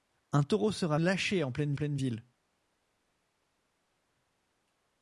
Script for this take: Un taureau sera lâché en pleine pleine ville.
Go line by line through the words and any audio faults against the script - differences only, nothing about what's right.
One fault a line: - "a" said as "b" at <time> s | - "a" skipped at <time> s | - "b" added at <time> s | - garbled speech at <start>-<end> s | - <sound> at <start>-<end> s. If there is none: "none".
none